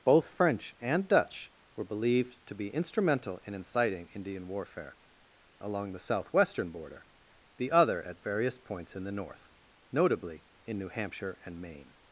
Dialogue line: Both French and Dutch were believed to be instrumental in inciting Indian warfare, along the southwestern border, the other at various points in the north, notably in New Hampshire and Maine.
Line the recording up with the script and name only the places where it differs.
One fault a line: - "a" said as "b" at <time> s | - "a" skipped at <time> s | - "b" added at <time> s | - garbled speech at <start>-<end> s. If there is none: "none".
none